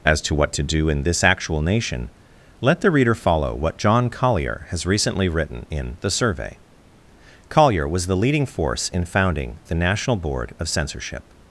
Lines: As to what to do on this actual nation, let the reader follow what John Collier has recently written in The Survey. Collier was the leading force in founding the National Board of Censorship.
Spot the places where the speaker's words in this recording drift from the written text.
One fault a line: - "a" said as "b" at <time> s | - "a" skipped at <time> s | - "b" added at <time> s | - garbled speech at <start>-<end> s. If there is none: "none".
- "on" said as "in" at 0.9 s